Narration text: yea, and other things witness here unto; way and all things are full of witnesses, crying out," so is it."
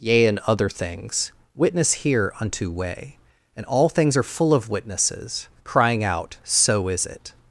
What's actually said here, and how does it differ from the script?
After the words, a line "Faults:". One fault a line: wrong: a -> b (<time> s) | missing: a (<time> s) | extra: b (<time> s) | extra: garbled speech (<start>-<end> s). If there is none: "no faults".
yea, and other things witness here unto; way and all things are full of witnesses, crying out," so is it."
Faults:
no faults